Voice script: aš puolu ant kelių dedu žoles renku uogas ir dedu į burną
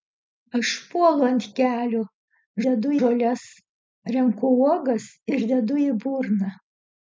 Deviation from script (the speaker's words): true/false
false